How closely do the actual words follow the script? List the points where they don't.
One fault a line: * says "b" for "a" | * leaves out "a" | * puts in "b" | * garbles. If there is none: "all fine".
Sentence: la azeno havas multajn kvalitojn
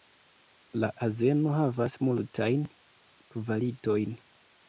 all fine